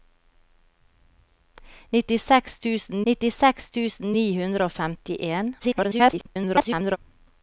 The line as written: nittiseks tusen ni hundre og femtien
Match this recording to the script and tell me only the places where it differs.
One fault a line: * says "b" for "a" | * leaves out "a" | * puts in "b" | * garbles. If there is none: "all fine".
* puts in "nittiseks tusen"
* garbles